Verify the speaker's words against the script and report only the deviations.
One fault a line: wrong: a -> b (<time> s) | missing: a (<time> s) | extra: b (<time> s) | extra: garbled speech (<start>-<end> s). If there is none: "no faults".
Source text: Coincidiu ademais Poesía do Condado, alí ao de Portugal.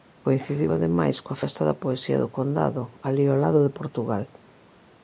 extra: coa Festa da (1.2 s)
extra: lado (3.4 s)